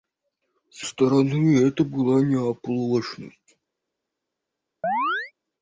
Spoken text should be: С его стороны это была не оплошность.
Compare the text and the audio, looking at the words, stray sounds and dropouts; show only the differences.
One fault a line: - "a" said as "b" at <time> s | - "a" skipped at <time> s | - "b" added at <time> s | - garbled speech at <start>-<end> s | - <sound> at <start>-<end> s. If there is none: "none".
- "его" skipped at 0.8 s
- chirp at 4.8-5.3 s